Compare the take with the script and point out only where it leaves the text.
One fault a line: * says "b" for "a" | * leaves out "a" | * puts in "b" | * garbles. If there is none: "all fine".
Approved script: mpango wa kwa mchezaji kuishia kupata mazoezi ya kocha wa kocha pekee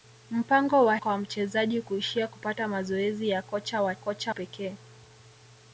all fine